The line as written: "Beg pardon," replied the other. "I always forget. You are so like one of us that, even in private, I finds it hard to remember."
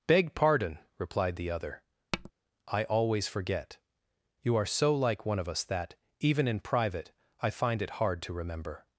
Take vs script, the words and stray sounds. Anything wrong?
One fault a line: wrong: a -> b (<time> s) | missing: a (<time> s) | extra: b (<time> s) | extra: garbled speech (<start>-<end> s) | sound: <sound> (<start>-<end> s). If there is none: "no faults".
sound: tap (2.1-2.3 s)
wrong: finds -> find (7.5 s)